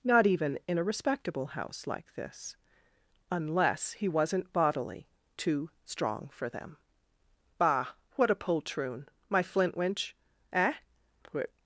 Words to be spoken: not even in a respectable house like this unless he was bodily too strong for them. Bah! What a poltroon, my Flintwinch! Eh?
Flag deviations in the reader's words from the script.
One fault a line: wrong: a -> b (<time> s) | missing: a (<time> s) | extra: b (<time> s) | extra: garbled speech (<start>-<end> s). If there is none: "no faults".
wrong: was -> wasn't (4.1 s)